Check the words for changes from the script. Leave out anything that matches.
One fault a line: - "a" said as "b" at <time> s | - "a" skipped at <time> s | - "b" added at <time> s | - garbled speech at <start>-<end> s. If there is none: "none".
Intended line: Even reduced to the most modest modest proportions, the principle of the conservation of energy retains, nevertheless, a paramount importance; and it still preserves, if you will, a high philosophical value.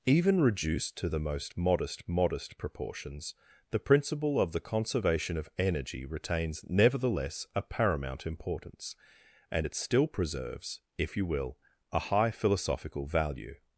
none